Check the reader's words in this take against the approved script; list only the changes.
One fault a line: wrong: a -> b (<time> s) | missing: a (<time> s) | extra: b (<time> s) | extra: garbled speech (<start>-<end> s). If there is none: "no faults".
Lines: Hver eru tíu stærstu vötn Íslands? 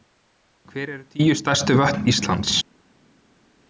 no faults